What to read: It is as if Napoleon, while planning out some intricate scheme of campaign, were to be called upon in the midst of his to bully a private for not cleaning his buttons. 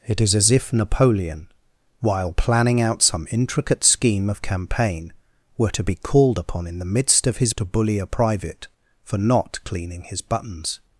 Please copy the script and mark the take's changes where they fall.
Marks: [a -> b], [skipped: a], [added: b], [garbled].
It is as if Napoleon, while planning out some intricate scheme of campaign, were to be called upon in the midst of his to bully a private for not cleaning his buttons.